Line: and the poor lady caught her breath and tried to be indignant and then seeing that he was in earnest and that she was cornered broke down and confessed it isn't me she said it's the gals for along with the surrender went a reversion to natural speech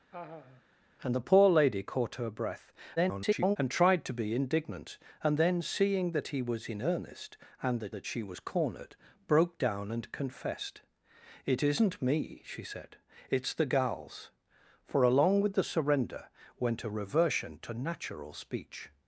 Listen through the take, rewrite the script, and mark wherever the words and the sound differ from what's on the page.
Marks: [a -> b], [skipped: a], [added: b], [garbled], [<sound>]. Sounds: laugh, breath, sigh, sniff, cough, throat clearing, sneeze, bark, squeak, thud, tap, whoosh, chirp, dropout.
[laugh] and the poor lady caught her breath [garbled] and tried to be indignant and then seeing that he was in earnest and that [added: that] she was cornered broke down and confessed it isn't me she said it's the gals for along with the surrender went a reversion to natural speech